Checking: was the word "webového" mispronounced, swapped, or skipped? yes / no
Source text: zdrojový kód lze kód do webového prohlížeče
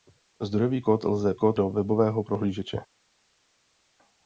no